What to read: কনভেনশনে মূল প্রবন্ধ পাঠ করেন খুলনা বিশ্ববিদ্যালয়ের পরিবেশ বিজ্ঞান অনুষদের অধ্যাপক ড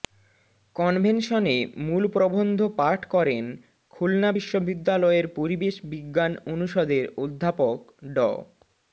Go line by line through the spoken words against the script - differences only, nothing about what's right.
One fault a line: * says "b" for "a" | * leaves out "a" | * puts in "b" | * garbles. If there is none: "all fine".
all fine